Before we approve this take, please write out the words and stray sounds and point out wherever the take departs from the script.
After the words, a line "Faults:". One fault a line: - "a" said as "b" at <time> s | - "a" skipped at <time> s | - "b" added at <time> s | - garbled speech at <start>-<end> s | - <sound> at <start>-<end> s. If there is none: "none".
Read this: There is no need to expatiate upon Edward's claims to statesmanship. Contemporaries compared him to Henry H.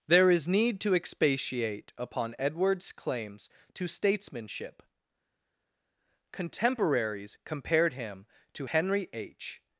There is need to expatiate upon Edward's claims to statesmanship. Contemporaries compared him to Henry H.
Faults:
- "no" skipped at 0.5 s